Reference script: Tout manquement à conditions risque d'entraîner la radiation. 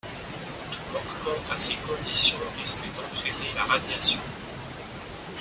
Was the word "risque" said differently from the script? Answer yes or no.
no